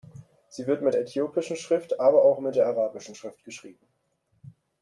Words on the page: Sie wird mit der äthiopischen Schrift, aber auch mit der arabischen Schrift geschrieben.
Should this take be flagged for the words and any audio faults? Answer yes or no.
no